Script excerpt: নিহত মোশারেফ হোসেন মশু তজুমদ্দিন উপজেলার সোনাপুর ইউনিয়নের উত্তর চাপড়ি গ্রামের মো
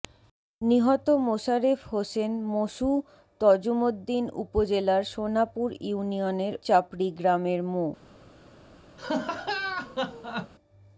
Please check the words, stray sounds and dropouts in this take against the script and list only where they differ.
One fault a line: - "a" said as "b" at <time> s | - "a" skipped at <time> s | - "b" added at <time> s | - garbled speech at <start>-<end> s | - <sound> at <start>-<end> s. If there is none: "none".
- "উত্তর" skipped at 6.5 s
- laugh at 9.0-10.5 s